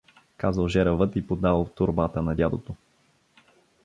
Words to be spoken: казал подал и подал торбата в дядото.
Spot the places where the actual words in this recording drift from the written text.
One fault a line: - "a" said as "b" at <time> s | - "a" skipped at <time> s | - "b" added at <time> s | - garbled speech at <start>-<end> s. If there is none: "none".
- "подал" said as "жеравът" at 0.7 s
- "в" said as "на" at 2.2 s